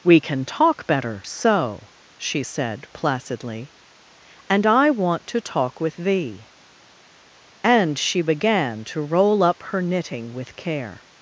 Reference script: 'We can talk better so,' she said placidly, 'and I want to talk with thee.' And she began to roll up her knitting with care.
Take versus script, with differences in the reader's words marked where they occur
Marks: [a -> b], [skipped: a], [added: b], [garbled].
'We can talk better so,' she said placidly, 'and I want to talk with thee.' And she began to roll up her knitting with care.